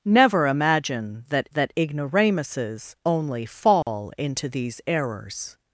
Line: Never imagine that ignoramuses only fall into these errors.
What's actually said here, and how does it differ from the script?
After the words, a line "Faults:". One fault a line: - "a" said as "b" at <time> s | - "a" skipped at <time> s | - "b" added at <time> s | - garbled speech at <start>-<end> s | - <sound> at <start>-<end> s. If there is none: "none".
Never imagine that that ignoramuses only fall into these errors.
Faults:
- "that" added at 1.5 s
- dropout at 3.8-3.9 s